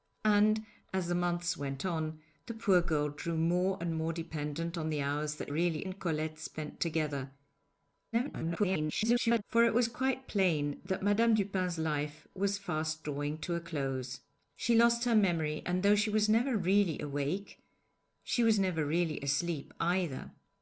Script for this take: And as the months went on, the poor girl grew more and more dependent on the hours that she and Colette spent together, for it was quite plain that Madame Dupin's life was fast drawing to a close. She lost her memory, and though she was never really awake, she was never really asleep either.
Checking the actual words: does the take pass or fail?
fail